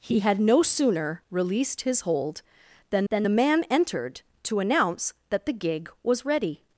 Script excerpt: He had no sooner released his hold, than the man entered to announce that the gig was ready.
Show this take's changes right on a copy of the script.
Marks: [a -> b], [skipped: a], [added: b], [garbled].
He had no sooner released his hold, than [added: than] the man entered to announce that the gig was ready.